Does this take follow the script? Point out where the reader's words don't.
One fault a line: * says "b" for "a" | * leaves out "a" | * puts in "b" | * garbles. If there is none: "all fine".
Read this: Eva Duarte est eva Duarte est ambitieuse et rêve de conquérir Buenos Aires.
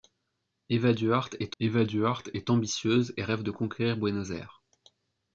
all fine